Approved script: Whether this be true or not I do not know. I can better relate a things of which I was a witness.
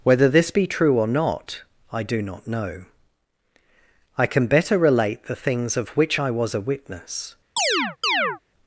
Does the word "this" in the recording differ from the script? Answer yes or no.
no